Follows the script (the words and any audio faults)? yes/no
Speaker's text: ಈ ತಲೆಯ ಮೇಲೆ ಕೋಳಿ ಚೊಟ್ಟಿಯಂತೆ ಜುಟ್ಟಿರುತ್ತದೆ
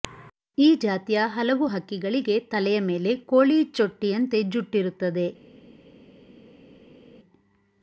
no